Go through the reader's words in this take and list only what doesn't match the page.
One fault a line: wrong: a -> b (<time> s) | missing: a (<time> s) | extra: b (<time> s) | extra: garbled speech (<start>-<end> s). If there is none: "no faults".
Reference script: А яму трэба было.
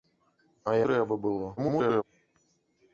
missing: яму (0.7 s)
extra: garbled speech (1.6-2.0 s)